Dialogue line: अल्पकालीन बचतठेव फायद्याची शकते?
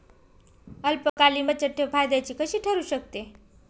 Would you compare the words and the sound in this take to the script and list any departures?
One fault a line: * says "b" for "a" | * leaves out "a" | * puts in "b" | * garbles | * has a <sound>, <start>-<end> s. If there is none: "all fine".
* has a dropout, 1.1-1.2 s
* puts in "कशी ठरु"